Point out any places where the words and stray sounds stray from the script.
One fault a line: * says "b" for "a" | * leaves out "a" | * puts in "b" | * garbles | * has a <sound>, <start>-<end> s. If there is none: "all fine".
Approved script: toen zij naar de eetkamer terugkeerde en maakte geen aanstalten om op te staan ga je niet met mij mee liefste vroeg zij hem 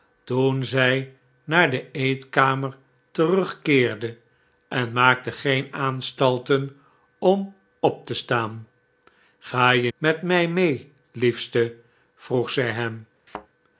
* leaves out "niet"
* has a thud, 13.3-13.5 s